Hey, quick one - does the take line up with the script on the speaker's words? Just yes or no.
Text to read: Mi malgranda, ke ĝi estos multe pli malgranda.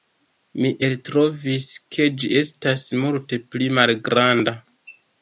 no